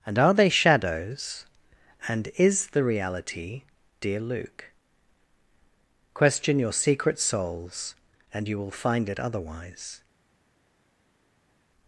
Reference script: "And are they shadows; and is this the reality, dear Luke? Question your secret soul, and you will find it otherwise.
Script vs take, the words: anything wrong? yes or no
yes